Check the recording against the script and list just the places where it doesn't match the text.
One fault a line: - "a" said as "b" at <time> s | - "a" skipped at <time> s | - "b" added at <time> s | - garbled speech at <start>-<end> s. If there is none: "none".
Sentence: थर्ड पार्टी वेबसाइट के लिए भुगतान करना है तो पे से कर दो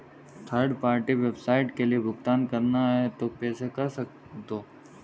none